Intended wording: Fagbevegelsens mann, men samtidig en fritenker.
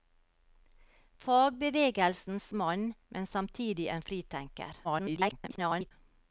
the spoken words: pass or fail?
fail